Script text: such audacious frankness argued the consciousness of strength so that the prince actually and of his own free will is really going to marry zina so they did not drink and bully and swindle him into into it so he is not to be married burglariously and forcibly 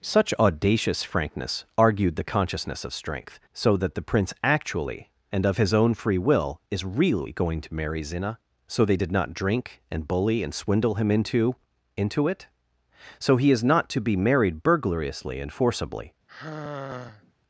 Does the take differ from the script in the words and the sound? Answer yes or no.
yes